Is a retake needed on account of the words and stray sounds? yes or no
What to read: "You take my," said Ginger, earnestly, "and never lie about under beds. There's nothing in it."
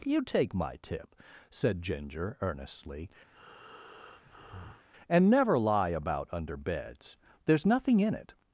yes